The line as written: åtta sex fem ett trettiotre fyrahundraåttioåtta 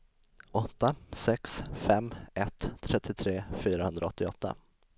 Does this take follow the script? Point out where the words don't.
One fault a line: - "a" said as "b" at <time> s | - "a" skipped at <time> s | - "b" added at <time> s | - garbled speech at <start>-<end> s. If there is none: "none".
none